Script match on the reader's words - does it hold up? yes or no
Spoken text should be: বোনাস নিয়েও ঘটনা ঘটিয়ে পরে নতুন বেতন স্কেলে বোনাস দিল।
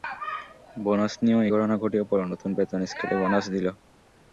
yes